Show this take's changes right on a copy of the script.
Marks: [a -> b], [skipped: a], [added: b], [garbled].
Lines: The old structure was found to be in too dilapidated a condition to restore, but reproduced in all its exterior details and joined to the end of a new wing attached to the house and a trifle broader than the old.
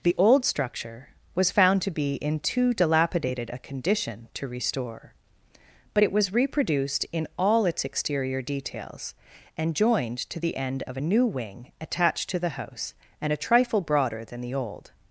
The old structure was found to be in too dilapidated a condition to restore, but [added: it was] reproduced in all its exterior details and joined to the end of a new wing attached to the house and a trifle broader than the old.